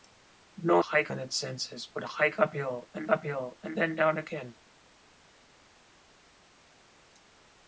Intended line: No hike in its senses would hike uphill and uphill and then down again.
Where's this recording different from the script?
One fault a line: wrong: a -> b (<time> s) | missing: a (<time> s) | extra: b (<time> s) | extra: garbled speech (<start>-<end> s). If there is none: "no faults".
no faults